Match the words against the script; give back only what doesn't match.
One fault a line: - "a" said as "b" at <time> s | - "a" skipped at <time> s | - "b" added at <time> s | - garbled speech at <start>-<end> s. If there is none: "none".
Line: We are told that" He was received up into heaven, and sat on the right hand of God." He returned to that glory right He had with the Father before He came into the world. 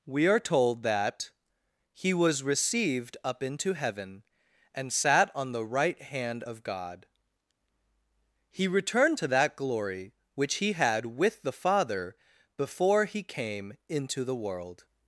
- "right" said as "which" at 10.3 s